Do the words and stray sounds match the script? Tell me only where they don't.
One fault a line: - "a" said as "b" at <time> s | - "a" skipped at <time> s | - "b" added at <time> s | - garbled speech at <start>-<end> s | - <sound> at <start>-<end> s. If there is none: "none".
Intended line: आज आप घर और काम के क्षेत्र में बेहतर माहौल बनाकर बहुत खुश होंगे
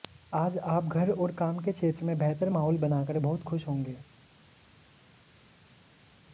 none